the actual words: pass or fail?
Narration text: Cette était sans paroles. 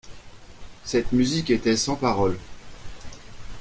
fail